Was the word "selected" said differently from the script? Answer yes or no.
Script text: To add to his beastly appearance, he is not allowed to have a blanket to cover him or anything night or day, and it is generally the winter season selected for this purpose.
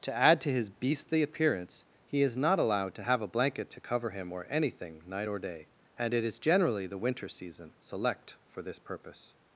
yes